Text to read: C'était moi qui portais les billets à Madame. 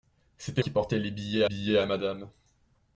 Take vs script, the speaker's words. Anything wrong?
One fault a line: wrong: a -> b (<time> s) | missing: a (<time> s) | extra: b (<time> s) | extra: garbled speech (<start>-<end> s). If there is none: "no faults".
missing: moi (0.6 s)
extra: billets (1.4 s)